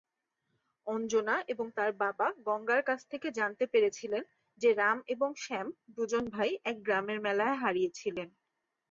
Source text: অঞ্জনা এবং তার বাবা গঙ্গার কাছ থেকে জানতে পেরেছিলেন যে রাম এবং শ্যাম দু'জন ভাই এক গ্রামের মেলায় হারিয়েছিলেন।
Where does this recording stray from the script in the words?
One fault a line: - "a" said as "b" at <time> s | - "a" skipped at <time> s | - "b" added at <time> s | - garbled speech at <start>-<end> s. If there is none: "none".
none